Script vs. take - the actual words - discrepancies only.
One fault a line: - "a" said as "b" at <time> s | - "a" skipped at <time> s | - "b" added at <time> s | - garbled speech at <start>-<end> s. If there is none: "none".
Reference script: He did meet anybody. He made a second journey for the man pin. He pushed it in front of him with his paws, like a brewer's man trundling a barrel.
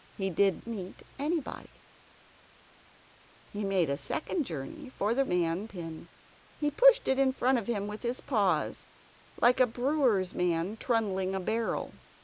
none